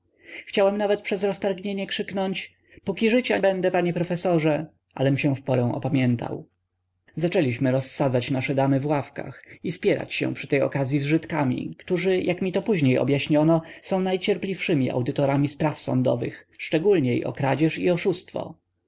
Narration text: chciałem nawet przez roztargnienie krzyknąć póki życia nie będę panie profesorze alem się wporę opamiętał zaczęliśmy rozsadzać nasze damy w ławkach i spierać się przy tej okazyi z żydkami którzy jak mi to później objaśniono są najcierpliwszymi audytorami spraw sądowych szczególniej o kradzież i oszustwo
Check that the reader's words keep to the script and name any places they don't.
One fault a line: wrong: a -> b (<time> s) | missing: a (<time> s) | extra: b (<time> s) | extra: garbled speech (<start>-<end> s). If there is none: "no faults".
missing: nie (3.4 s)